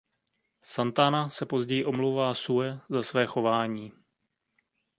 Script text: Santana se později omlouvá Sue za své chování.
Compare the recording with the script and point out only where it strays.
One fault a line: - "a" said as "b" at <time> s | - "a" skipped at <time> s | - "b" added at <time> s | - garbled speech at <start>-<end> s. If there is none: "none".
none